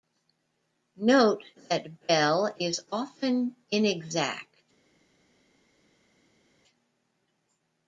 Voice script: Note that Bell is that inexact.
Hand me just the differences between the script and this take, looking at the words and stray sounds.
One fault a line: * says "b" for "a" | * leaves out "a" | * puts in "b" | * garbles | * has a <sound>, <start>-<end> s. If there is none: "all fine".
* says "often" for "that"